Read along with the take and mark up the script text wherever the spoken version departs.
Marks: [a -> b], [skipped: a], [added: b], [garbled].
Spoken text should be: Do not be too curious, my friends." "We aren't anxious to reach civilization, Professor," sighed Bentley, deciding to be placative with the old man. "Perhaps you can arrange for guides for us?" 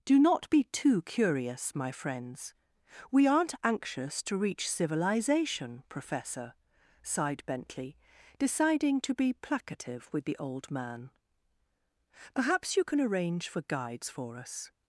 Do not be too curious, my friends." "We aren't anxious to reach civilization, Professor," sighed Bentley, deciding to be placative with the old man. "Perhaps you can arrange for guides for us?"